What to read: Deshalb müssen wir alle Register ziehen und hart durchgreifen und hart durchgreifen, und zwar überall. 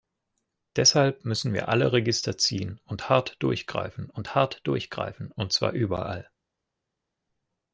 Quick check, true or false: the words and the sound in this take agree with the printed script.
true